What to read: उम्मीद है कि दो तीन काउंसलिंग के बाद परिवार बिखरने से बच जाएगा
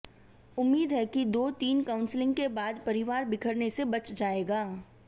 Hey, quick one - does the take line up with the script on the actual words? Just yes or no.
yes